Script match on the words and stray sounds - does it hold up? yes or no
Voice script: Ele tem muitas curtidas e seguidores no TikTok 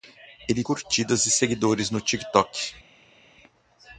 no